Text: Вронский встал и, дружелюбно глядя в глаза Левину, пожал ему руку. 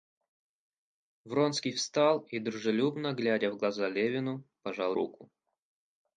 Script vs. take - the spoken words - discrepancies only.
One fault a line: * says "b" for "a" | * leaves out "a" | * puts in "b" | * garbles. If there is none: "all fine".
* leaves out "ему"